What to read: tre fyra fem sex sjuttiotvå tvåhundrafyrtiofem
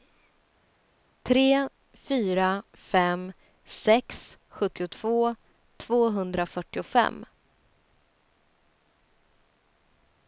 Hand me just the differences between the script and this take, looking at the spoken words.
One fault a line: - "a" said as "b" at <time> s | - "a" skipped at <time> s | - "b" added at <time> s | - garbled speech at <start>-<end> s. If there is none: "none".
none